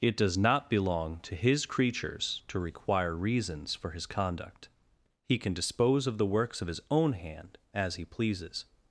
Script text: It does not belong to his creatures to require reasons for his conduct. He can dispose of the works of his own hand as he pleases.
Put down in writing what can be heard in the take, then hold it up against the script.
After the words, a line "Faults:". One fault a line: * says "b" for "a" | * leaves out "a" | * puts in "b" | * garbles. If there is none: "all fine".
It does not belong to his creatures to require reasons for his conduct. He can dispose of the works of his own hand as he pleases.
Faults:
all fine